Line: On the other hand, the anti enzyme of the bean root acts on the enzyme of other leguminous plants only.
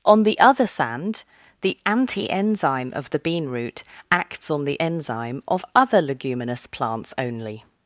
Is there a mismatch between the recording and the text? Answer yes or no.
yes